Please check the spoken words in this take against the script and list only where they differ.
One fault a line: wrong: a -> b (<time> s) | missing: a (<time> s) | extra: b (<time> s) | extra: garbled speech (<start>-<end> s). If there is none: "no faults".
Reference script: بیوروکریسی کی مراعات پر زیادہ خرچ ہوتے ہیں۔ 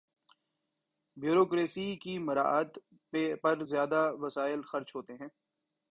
extra: وسائل (4.2 s)